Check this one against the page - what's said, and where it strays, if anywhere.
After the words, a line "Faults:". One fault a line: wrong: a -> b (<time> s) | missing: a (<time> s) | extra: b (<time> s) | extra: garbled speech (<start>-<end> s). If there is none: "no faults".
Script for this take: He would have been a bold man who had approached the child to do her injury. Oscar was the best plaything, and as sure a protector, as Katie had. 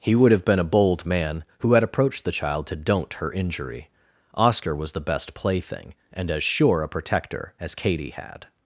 He would have been a bold man who had approached the child to don't her injury. Oscar was the best plaything, and as sure a protector, as Katie had.
Faults:
wrong: do -> don't (2.8 s)